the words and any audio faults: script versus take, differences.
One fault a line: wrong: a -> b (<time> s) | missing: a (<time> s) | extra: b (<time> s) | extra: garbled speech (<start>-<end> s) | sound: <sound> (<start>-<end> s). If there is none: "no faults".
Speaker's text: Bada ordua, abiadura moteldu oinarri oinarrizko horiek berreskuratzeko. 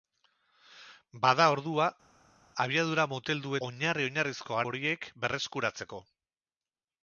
no faults